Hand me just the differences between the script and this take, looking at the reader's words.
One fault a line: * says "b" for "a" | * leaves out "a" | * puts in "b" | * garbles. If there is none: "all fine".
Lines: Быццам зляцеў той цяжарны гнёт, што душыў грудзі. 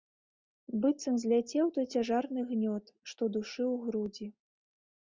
all fine